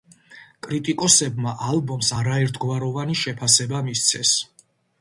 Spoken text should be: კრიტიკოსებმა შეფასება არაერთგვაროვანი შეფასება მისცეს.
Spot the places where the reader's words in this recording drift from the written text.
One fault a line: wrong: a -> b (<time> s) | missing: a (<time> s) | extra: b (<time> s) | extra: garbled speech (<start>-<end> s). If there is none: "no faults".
wrong: შეფასება -> ალბომს (1.7 s)